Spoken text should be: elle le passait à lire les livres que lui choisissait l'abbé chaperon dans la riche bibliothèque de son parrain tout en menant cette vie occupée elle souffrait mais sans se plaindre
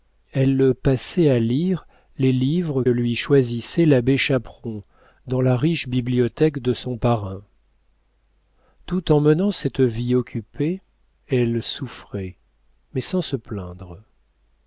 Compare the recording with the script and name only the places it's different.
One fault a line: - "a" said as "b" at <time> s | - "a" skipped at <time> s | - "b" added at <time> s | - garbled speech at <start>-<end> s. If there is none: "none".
- "que" skipped at 2.8 s